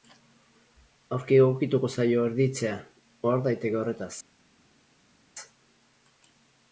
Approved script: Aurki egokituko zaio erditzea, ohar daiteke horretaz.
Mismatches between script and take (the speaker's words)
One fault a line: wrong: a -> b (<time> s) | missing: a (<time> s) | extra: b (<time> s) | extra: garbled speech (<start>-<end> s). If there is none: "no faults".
no faults